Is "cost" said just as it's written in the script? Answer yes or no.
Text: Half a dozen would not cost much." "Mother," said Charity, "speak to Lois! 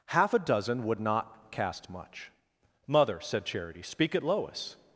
no